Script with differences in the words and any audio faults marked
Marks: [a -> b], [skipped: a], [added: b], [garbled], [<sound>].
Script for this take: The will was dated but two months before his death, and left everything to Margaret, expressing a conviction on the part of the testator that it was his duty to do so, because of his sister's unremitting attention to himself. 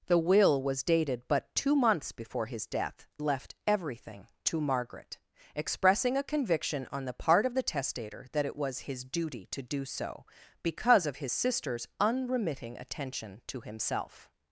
The will was dated but two months before his death, [skipped: and] left everything to Margaret, expressing a conviction on the part of the testator that it was his duty to do so, because of his sister's unremitting attention to himself.